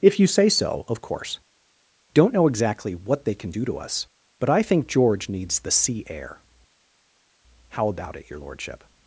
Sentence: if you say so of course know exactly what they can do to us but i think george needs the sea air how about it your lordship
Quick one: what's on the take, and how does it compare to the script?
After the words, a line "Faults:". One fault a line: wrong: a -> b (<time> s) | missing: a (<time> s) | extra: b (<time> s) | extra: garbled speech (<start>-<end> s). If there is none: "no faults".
if you say so of course don't know exactly what they can do to us but i think george needs the sea air how about it your lordship
Faults:
extra: don't (2.1 s)